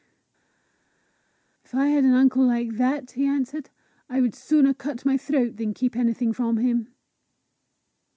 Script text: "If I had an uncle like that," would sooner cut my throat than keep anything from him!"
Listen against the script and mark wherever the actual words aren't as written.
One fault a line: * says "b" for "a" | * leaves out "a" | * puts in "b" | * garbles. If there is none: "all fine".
* puts in "he answered I"